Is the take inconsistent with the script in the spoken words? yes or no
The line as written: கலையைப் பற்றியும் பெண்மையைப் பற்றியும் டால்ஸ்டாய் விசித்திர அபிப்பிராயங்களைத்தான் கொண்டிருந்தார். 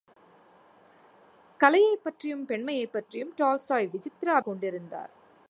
yes